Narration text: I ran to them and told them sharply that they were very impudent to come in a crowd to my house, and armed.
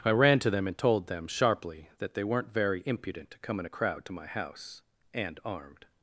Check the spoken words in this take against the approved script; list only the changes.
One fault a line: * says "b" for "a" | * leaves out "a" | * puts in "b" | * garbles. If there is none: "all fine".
* says "weren't" for "were"